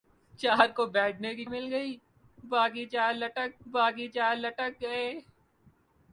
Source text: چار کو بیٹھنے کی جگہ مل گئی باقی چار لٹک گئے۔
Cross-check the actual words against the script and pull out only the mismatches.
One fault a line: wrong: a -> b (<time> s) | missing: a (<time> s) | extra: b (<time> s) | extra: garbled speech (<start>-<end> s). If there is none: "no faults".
missing: جگہ (1.4 s)
extra: باقی چار لٹک (3.7 s)